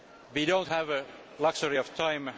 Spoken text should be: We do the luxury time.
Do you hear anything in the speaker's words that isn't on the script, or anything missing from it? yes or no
yes